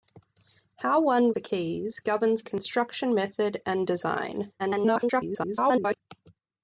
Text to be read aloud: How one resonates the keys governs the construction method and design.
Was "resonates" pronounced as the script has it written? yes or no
no